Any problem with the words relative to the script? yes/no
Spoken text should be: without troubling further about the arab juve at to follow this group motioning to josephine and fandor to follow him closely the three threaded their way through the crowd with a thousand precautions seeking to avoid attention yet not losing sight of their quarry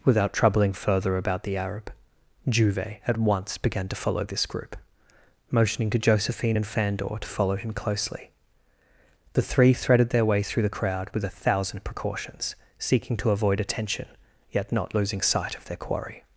yes